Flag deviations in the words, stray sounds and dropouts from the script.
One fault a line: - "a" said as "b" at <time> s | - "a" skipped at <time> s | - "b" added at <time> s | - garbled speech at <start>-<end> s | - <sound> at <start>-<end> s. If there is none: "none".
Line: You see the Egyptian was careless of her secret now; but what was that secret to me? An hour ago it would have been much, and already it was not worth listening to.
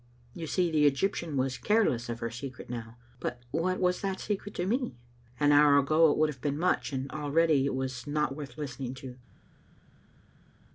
none